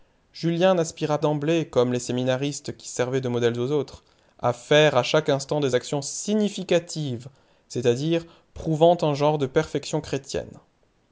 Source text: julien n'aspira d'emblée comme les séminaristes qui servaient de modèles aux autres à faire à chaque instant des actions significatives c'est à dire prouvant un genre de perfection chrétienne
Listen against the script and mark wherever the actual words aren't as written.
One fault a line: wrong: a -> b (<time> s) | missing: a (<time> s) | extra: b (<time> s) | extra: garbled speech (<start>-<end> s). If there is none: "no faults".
no faults